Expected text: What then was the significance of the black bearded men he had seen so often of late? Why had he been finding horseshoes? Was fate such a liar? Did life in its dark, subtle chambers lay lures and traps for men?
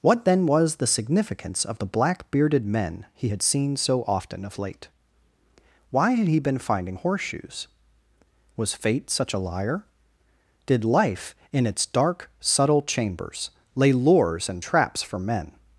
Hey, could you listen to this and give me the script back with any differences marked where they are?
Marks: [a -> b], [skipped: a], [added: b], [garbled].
What then was the significance of the black bearded men he had seen so often of late? Why had he been finding horseshoes? Was fate such a liar? Did life in its dark, subtle chambers lay lures and traps for men?